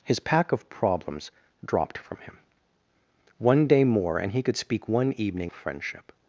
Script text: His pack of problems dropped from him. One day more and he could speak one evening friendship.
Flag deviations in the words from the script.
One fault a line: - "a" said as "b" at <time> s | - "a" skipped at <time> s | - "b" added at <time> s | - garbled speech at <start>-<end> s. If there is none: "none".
none